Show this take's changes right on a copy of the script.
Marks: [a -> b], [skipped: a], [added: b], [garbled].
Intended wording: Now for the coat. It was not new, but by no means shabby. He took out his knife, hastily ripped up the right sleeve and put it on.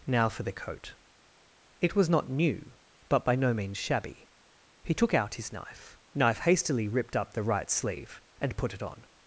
Now for the coat. It was not new, but by no means shabby. He took out his knife, [added: knife] hastily ripped up the right sleeve and put it on.